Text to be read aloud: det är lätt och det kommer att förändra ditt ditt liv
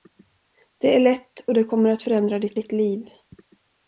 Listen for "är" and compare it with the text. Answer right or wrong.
right